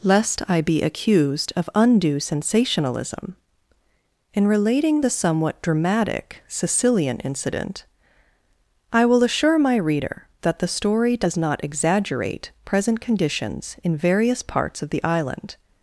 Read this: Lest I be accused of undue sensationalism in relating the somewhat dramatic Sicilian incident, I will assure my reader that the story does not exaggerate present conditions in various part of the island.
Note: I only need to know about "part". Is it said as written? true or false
false